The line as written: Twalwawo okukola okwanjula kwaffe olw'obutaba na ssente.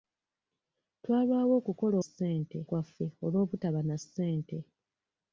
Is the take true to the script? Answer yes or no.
no